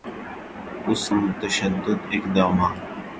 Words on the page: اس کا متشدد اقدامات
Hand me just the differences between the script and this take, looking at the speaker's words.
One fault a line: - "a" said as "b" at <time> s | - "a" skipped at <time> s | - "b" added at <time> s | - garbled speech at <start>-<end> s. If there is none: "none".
- "کا" skipped at 1.0 s